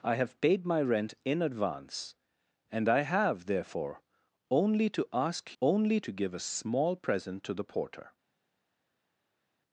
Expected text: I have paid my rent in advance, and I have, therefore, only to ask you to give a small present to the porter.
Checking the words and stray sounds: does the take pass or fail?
fail